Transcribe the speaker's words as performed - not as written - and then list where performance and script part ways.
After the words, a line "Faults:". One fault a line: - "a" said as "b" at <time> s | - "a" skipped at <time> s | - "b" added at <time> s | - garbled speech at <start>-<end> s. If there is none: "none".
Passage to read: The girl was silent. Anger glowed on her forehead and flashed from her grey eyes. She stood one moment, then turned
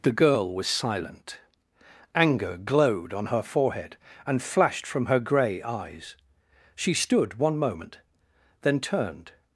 The girl was silent. Anger glowed on her forehead and flashed from her grey eyes. She stood one moment, then turned
Faults:
none